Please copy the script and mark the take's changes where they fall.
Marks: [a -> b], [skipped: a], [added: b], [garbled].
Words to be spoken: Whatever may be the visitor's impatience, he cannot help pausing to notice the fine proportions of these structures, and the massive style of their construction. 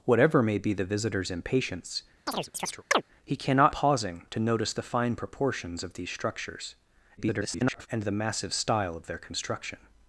Whatever may be the visitor's impatience, he cannot [skipped: help] pausing to notice the fine proportions of these structures, [garbled] and the massive style of their construction.